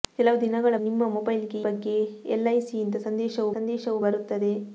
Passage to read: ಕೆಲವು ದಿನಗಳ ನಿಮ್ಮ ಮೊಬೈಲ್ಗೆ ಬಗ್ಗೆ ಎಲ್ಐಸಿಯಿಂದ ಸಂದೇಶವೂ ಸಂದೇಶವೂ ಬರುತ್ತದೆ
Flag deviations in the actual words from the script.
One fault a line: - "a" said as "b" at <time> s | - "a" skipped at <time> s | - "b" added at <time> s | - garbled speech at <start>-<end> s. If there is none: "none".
none